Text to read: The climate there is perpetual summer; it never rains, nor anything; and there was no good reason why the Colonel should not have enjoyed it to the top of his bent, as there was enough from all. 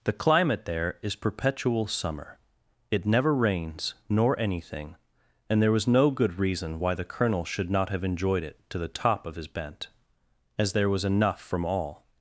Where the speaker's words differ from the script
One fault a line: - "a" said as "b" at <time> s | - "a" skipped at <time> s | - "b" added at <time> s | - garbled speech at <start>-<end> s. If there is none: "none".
none